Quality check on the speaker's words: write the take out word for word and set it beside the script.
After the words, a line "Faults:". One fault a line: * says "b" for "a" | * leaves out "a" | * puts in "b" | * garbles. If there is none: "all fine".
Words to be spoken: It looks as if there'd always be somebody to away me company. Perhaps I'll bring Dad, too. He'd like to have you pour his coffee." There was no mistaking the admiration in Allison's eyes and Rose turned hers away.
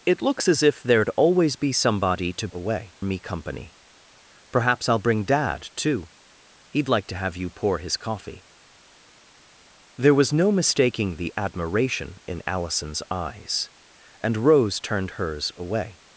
It looks as if there'd always be somebody to away me company. Perhaps I'll bring Dad, too. He'd like to have you pour his coffee." There was no mistaking the admiration in Allison's eyes and Rose turned hers away.
Faults:
all fine